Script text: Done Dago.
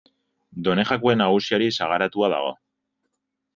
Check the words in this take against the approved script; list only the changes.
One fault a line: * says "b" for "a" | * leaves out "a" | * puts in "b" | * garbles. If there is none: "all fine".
* puts in "Jakue Nagusiari sagaratua"